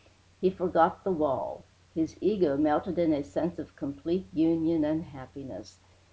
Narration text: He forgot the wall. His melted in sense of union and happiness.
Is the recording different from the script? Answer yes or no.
yes